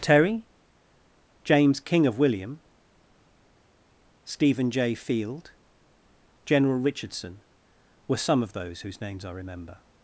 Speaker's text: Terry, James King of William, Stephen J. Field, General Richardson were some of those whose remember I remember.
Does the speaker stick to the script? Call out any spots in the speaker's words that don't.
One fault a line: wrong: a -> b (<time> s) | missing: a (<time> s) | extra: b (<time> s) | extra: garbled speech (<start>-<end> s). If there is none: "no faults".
wrong: remember -> names (9.0 s)